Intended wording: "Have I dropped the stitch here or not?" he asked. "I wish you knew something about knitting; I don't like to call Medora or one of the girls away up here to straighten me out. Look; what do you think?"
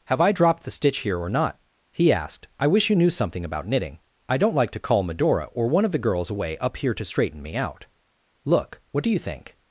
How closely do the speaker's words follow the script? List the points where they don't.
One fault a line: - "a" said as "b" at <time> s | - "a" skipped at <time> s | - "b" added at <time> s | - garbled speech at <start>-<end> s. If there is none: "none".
none